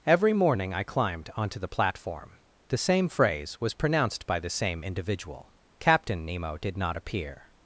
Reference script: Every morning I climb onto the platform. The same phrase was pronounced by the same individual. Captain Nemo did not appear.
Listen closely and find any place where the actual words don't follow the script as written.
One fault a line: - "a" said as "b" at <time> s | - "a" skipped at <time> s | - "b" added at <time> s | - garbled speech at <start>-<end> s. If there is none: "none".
- "climb" said as "climbed" at 0.8 s